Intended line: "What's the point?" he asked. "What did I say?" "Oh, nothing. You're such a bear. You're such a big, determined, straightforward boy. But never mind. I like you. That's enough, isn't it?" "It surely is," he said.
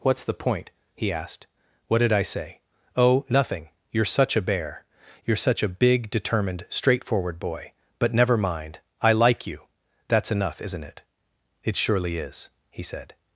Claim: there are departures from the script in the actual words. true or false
false